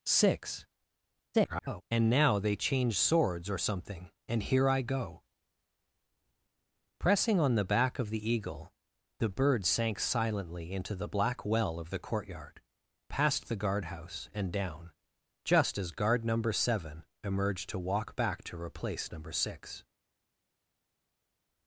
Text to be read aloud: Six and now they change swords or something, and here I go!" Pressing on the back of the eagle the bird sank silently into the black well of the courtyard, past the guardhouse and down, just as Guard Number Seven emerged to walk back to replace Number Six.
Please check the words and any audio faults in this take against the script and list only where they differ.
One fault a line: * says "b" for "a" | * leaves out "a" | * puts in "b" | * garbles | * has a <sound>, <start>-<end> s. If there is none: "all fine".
* garbles